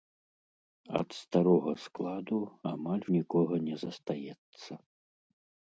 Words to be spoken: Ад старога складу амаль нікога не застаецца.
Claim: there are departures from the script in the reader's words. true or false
false